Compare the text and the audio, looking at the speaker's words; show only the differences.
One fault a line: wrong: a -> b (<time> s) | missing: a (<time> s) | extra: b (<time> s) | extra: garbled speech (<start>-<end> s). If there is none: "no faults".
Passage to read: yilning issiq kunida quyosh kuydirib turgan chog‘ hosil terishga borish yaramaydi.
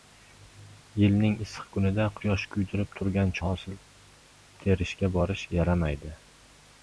missing: chog (3.4 s)